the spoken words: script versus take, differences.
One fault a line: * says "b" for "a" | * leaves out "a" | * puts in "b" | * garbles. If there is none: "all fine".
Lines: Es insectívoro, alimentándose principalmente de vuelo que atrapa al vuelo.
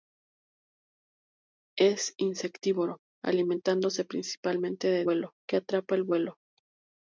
all fine